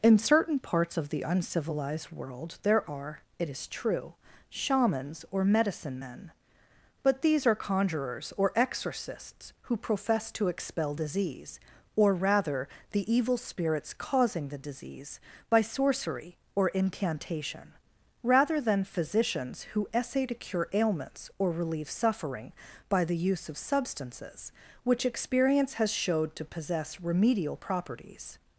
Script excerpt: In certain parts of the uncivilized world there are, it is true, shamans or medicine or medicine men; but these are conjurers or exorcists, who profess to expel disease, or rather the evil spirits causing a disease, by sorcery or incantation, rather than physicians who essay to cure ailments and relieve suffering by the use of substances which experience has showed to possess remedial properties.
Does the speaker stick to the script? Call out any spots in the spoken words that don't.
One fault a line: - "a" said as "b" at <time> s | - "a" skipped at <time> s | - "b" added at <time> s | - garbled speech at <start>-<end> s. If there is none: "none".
- "or medicine" skipped at 6.0 s
- "a" said as "the" at 14.5 s
- "and" said as "or" at 21.4 s